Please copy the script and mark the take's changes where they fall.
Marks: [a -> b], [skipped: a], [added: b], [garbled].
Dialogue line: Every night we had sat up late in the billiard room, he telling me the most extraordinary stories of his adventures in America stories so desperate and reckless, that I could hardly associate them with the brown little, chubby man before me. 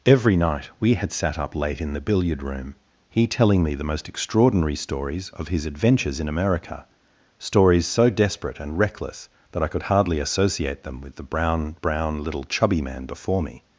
Every night we had sat up late in the billiard room, he telling me the most extraordinary stories of his adventures in America stories so desperate and reckless, that I could hardly associate them with the brown [added: brown] little, chubby man before me.